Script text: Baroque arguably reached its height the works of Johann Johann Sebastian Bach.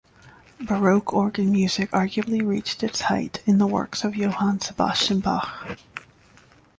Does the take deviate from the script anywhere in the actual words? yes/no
yes